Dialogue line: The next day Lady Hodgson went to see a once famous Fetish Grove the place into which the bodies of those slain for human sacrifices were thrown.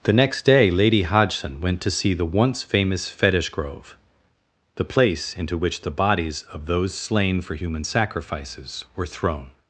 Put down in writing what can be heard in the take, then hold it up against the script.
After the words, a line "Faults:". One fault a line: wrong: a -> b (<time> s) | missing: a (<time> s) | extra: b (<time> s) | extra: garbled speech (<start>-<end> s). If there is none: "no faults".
The next day Lady Hodgson went to see the once famous Fetish Grove the place into which the bodies of those slain for human sacrifices were thrown.
Faults:
wrong: a -> the (2.1 s)